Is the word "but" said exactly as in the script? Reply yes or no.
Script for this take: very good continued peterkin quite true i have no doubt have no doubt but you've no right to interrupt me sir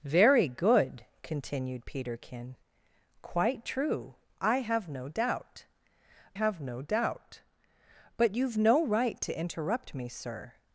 yes